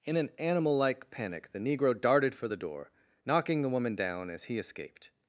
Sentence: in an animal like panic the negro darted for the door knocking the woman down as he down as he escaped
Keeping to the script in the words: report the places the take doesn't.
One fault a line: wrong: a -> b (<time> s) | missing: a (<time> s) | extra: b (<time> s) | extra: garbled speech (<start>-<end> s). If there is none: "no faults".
missing: down as he (4.6 s)